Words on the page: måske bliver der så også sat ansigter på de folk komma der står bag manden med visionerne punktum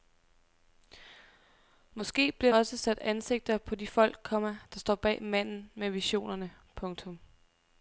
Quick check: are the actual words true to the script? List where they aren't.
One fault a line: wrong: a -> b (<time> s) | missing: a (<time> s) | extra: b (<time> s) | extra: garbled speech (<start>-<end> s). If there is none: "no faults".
missing: der så (2.5 s)